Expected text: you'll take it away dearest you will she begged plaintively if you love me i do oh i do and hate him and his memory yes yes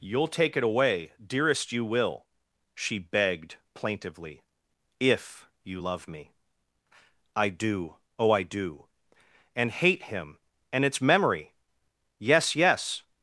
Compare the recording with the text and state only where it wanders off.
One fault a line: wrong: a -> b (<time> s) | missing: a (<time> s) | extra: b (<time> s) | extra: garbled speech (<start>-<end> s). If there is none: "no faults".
wrong: his -> its (10.8 s)